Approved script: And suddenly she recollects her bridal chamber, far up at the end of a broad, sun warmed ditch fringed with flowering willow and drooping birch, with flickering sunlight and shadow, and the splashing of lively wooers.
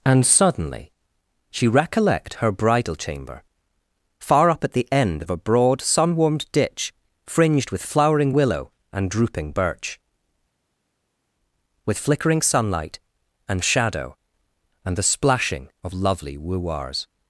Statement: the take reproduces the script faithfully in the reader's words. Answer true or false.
false